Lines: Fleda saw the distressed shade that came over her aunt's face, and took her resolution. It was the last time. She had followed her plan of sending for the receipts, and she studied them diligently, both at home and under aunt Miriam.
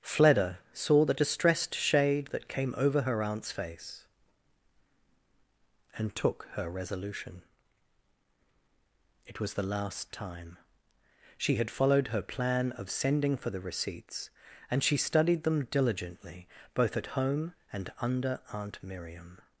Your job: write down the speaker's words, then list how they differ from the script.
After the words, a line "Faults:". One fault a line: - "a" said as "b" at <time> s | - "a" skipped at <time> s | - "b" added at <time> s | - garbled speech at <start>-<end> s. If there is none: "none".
Fleda saw the distressed shade that came over her aunt's face, and took her resolution. It was the last time. She had followed her plan of sending for the receipts, and she studied them diligently, both at home and under aunt Miriam.
Faults:
none